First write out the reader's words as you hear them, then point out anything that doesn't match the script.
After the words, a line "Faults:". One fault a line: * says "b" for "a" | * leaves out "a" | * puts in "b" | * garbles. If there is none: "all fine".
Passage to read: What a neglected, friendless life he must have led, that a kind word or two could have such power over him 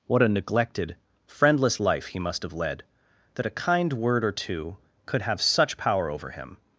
What a neglected, friendless life he must have led, that a kind word or two could have such power over him
Faults:
all fine